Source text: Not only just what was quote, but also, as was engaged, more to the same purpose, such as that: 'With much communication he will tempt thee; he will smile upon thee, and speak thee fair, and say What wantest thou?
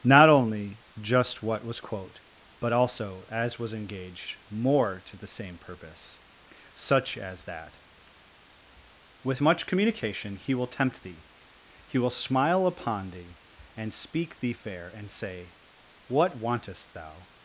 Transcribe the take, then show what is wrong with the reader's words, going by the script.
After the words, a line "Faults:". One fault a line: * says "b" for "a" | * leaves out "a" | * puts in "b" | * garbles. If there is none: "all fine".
Not only just what was quote, but also, as was engaged, more to the same purpose, such as that: 'With much communication he will tempt thee; he will smile upon thee, and speak thee fair, and say What wantest thou?
Faults:
all fine